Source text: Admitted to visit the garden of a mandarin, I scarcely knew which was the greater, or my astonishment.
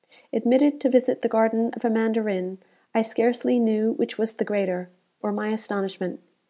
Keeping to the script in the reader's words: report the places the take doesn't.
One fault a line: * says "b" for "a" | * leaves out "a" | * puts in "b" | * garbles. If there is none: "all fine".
all fine